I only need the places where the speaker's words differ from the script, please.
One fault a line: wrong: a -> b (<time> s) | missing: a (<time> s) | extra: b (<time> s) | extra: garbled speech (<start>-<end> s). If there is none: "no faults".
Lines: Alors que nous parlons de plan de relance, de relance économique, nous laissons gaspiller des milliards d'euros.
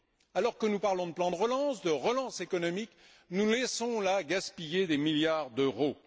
extra: là (4.0 s)